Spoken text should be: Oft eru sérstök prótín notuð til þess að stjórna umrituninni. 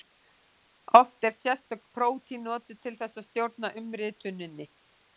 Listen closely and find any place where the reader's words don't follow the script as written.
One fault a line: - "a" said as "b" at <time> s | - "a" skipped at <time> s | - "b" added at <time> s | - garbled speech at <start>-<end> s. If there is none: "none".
none